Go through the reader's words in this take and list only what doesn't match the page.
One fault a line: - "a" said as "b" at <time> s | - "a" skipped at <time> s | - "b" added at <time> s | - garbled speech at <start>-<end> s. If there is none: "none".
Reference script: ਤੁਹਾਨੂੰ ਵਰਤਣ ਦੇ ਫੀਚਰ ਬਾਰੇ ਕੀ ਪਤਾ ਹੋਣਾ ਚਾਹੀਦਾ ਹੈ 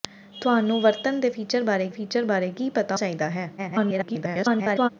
- "ਫੀਚਰ ਬਾਰੇ" added at 1.9 s
- "ਹੋਣਾ" skipped at 3.0 s
- garbled speech at 3.6-4.9 s